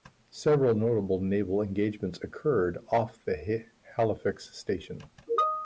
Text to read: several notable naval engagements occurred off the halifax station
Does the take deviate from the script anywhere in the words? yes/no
no